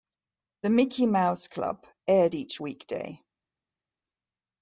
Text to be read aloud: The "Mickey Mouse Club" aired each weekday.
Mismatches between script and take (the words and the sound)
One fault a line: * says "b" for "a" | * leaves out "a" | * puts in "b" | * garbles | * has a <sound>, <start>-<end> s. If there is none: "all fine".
all fine